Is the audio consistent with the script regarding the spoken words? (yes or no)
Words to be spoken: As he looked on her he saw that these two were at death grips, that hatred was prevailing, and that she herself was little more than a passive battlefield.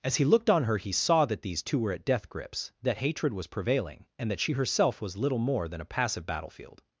yes